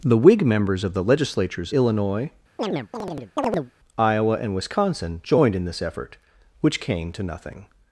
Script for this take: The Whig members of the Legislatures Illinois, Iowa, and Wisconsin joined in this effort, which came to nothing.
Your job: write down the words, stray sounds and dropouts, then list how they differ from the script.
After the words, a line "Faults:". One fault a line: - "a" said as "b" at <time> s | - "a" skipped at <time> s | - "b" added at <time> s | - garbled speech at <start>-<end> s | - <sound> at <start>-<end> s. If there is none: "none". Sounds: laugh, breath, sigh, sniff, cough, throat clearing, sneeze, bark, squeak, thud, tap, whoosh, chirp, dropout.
The Whig members of the Legislatures Illinois, Iowa, and Wisconsin joined in this effort, which came to nothing.
Faults:
- chirp at 2.6-3.7 s